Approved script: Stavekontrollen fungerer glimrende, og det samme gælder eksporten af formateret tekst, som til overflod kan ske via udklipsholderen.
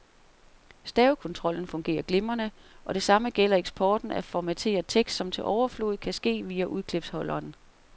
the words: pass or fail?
pass